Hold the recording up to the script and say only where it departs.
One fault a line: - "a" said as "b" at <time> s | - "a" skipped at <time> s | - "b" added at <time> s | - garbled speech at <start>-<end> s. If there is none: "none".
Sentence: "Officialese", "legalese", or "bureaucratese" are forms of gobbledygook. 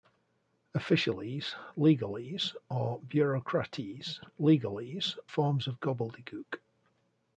- "are" said as "legalese" at 4.4 s